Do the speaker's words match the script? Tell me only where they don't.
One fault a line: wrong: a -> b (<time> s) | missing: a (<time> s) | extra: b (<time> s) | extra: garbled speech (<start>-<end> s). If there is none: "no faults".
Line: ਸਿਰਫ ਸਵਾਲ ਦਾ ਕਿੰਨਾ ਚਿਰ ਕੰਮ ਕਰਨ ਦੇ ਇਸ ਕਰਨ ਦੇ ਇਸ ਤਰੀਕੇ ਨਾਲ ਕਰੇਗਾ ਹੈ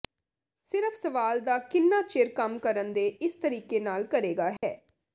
missing: ਕਰਨ ਦੇ ਇਸ (3.4 s)